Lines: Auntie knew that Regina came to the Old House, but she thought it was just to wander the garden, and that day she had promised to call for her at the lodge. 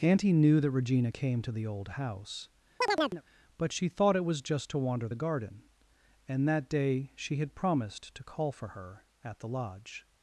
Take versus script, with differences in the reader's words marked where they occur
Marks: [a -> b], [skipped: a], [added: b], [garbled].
Auntie knew that Regina came to the Old House, but she thought it was just to wander the garden, and that day she had promised to call for her at the lodge.